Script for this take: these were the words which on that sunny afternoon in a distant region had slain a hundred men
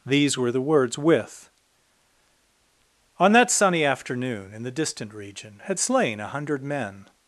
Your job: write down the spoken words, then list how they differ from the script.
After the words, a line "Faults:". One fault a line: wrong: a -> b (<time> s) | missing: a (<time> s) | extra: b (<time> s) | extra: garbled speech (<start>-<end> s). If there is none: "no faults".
these were the words with on that sunny afternoon in the distant region had slain a hundred men
Faults:
wrong: which -> with (1.0 s)
wrong: a -> the (4.6 s)